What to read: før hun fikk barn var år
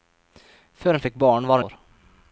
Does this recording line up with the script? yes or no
yes